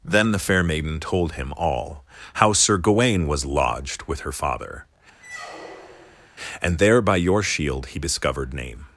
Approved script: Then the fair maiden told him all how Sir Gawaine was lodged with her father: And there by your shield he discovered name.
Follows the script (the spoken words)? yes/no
yes